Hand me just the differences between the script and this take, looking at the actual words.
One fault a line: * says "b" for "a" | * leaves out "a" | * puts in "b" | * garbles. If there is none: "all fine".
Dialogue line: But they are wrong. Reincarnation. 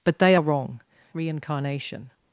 all fine